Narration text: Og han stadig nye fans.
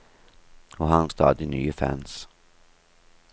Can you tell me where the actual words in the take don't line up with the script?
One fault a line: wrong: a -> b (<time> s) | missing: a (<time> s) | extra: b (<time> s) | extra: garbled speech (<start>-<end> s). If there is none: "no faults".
no faults